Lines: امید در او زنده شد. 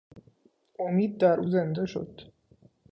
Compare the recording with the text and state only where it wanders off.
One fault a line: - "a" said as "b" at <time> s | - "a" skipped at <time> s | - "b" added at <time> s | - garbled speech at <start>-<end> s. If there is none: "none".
none